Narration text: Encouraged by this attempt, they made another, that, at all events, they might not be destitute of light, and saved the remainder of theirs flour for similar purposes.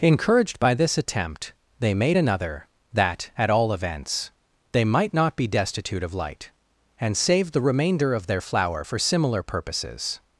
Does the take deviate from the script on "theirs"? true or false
true